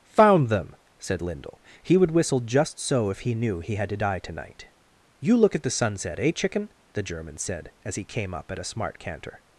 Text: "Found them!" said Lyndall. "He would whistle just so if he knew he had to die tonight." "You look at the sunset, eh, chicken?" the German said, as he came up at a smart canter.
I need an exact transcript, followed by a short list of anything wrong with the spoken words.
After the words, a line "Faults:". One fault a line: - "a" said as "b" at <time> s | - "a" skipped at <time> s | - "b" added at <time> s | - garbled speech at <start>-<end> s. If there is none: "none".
"Found them!" said Lyndall. "He would whistle just so if he knew he had to die tonight." "You look at the sunset, eh, chicken?" the German said, as he came up at a smart canter.
Faults:
none